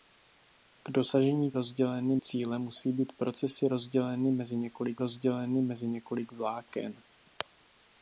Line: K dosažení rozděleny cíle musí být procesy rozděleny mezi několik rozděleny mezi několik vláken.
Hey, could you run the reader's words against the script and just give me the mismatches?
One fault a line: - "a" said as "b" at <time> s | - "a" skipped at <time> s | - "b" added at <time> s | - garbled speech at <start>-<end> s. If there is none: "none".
none